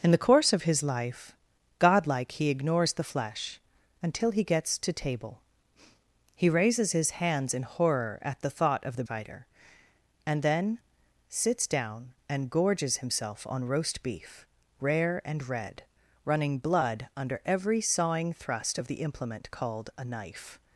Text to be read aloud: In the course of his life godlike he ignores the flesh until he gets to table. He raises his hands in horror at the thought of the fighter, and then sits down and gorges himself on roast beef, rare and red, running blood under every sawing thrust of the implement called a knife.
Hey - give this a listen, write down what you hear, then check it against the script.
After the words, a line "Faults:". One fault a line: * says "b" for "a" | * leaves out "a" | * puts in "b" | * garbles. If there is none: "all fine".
In the course of his life godlike he ignores the flesh until he gets to table. He raises his hands in horror at the thought of the fighter, and then sits down and gorges himself on roast beef, rare and red, running blood under every sawing thrust of the implement called a knife.
Faults:
all fine